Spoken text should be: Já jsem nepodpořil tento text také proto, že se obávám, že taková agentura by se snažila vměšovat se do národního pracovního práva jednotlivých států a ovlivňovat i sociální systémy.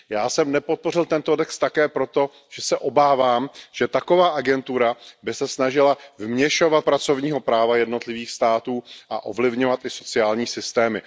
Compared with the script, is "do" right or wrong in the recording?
wrong